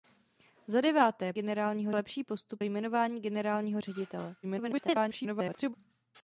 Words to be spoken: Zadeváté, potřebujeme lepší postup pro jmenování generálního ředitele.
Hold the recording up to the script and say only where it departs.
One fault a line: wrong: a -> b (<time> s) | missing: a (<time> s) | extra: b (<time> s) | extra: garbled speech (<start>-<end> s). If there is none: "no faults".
wrong: potřebujeme -> generálního (1.3 s)
missing: pro (2.6 s)
extra: garbled speech (4.4-5.7 s)